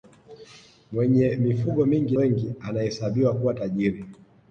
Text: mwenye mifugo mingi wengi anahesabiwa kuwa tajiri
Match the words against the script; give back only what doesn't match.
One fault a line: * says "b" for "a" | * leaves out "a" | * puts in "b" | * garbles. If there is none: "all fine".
all fine